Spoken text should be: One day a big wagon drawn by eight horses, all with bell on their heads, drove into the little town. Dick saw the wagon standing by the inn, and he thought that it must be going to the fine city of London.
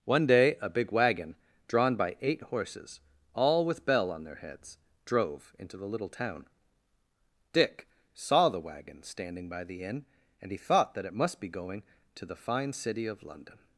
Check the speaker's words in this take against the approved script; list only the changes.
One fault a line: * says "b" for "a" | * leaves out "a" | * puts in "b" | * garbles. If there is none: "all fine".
all fine